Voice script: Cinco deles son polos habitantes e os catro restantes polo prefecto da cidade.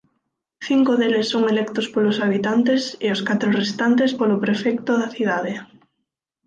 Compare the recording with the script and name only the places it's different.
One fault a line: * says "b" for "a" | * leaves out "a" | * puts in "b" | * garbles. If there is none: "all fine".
* puts in "electos"